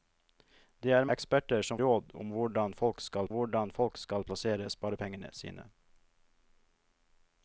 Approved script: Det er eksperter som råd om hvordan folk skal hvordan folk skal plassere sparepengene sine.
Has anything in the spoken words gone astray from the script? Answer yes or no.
no